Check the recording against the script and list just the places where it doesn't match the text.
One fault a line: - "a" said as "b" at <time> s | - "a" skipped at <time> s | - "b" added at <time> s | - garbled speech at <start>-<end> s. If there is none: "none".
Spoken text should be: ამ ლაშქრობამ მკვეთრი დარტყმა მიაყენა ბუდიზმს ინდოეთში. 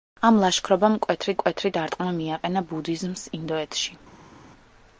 - "მკვეთრი" added at 1.3 s